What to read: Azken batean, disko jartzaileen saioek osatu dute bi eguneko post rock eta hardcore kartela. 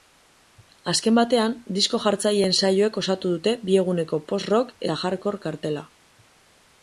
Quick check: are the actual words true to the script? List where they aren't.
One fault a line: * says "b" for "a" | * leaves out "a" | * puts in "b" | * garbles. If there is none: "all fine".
all fine